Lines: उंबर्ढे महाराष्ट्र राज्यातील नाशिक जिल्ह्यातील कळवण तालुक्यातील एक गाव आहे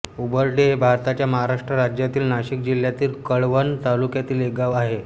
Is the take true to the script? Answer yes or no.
no